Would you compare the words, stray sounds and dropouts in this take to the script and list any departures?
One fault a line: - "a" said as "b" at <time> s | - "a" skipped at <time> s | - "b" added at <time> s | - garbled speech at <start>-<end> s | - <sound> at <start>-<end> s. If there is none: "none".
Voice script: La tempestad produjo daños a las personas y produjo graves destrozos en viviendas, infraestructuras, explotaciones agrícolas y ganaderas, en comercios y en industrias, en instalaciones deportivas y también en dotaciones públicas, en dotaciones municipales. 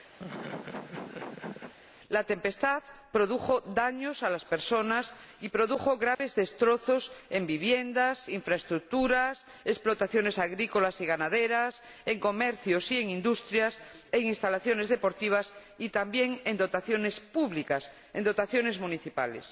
- laugh at 0.2-1.7 s
- dropout at 6.1-6.2 s